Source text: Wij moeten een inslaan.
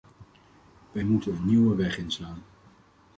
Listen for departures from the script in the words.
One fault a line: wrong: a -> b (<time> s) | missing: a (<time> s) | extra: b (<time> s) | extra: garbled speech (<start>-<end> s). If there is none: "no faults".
extra: nieuwe weg (1.5 s)